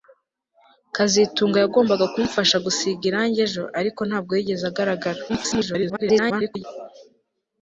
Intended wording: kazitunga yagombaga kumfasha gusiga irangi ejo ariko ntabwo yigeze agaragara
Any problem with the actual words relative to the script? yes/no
yes